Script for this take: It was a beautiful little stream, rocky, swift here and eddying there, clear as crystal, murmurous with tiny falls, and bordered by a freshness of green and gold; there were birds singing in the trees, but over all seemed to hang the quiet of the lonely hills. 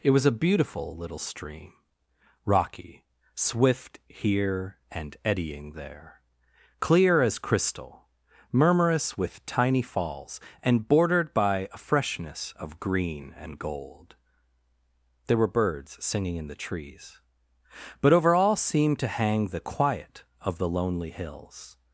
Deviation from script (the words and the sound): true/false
false